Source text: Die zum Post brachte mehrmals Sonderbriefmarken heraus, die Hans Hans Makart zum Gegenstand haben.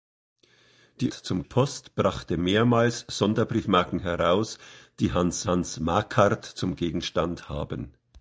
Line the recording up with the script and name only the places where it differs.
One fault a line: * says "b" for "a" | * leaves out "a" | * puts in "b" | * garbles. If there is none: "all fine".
all fine